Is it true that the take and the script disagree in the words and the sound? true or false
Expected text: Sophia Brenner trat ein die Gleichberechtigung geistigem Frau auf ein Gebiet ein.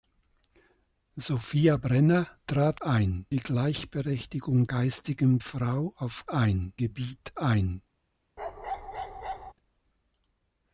true